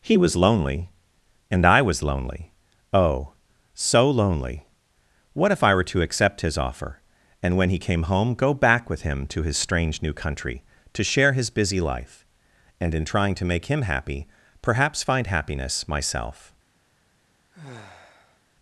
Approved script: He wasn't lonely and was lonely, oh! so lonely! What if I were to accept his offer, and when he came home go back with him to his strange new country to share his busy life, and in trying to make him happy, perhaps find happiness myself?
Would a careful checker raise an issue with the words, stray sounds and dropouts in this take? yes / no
yes